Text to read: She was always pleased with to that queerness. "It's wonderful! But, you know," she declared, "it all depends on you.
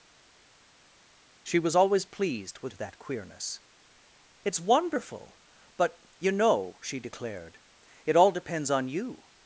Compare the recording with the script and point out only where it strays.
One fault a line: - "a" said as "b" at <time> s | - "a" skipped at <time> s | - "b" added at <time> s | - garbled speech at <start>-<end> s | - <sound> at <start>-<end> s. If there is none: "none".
none